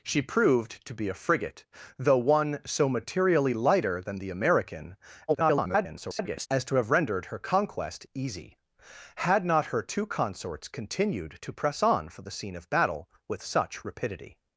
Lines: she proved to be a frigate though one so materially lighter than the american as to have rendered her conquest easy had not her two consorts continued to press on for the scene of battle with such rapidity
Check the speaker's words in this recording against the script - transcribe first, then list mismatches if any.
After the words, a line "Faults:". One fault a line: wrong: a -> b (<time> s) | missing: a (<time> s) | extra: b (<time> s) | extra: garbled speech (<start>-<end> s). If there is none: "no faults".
she proved to be a frigate though one so materially lighter than the american [garbled] as to have rendered her conquest easy had not her two consorts continued to press on for the scene of battle with such rapidity
Faults:
extra: garbled speech (5.3-6.5 s)